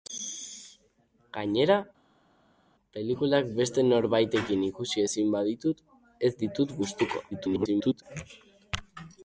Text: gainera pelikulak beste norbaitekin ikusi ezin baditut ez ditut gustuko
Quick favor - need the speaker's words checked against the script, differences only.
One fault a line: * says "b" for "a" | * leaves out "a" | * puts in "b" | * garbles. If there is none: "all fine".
* garbles